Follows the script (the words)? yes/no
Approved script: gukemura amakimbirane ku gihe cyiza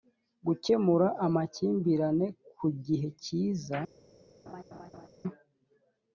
yes